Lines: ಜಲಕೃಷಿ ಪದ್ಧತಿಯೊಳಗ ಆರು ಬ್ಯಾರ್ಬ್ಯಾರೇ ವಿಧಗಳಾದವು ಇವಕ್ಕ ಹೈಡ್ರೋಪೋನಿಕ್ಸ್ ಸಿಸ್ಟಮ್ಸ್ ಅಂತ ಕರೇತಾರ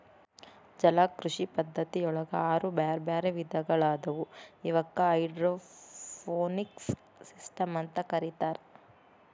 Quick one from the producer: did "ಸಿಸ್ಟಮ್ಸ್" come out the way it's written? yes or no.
yes